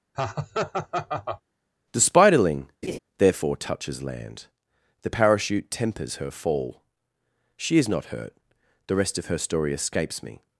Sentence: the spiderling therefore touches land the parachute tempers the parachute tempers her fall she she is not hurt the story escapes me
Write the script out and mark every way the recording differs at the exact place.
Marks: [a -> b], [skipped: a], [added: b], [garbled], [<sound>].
[laugh] the spiderling [laugh] therefore touches land the parachute tempers [skipped: the parachute tempers] her fall she [skipped: she] is not hurt the [added: rest of her] story escapes me